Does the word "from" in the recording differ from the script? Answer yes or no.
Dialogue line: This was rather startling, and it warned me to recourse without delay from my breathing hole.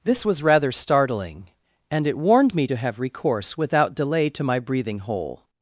yes